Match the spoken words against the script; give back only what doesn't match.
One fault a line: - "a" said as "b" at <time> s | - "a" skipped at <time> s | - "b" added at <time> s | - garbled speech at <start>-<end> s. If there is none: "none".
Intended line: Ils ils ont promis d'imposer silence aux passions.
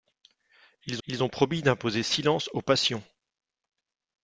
none